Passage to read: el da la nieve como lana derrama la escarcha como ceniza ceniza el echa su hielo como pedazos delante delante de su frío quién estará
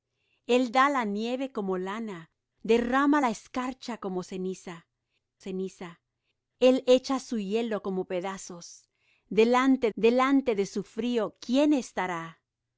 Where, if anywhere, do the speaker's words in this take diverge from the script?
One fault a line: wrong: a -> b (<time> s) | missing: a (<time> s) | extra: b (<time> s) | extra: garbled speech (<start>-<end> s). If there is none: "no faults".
no faults